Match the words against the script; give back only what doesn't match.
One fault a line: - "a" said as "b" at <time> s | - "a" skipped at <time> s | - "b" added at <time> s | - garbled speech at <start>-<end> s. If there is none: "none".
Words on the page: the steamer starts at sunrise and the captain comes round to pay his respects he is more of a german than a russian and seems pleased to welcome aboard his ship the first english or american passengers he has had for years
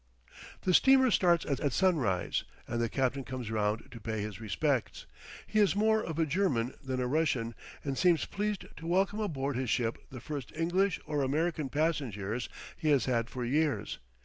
- "at" added at 1.6 s